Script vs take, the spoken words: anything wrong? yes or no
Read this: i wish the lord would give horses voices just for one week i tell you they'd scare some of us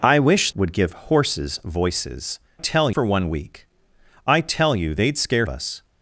yes